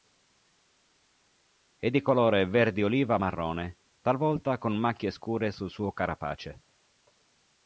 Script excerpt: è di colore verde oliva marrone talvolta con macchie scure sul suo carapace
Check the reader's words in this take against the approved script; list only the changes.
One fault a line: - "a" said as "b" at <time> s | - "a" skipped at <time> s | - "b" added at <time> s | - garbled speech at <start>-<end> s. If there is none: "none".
none